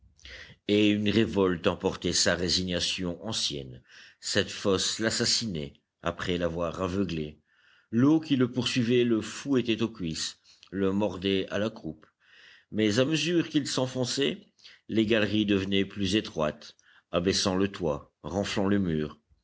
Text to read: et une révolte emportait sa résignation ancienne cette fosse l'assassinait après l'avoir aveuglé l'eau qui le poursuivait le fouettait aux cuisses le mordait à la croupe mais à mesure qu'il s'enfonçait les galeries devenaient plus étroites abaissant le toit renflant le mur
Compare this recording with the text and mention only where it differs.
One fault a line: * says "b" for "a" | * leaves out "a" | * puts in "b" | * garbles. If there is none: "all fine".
all fine